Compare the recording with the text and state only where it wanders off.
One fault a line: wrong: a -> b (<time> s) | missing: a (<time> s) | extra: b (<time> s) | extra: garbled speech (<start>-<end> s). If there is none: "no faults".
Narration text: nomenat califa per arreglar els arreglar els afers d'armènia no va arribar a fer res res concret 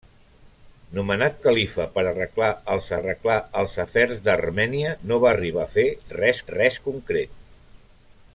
no faults